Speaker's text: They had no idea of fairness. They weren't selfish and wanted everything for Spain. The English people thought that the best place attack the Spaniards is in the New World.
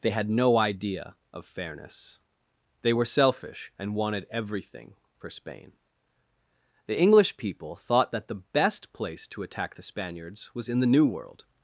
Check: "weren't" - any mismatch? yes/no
yes